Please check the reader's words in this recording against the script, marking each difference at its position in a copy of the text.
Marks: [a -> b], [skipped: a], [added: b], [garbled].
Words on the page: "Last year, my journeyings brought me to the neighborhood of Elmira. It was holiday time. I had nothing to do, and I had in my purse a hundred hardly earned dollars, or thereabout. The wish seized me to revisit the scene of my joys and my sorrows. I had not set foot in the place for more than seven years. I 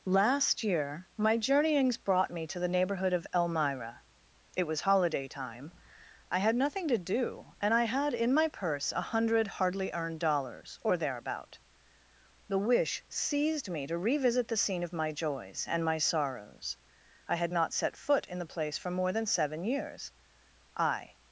"Last year, my journeyings brought me to the neighborhood of Elmira. It was holiday time. I had nothing to do, and I had in my purse a hundred hardly earned dollars, or thereabout. The wish seized me to revisit the scene of my joys and my sorrows. I had not set foot in the place for more than seven years. I